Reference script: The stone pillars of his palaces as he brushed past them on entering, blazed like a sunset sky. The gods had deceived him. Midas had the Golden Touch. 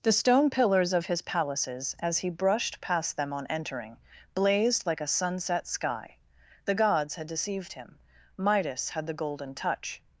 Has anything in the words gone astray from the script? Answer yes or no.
no